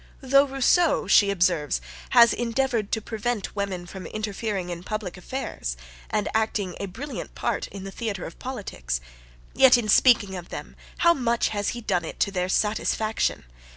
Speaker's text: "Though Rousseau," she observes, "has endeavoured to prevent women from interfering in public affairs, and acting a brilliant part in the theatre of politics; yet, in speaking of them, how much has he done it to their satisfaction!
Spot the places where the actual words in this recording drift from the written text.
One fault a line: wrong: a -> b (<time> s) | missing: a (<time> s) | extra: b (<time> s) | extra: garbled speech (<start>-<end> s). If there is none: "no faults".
no faults